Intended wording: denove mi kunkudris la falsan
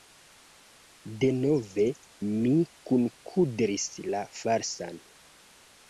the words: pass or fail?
pass